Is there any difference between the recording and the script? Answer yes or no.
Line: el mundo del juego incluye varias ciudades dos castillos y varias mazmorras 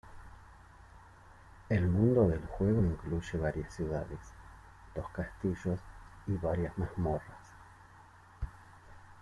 no